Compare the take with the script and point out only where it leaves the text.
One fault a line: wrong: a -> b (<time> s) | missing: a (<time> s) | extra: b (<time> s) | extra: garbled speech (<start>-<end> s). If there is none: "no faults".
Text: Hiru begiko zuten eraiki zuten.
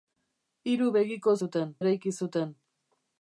no faults